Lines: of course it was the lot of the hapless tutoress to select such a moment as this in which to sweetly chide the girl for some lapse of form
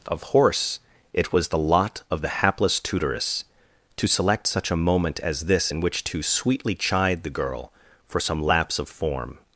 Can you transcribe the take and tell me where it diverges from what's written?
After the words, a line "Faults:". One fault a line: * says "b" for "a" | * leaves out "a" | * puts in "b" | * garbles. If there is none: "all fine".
of horse it was the lot of the hapless tutoress to select such a moment as this in which to sweetly chide the girl for some lapse of form
Faults:
* says "horse" for "course"